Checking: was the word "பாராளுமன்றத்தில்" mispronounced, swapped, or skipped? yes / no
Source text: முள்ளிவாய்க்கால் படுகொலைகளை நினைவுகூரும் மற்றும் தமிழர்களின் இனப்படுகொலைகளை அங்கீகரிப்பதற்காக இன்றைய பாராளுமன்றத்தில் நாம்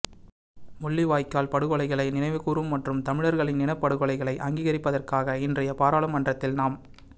no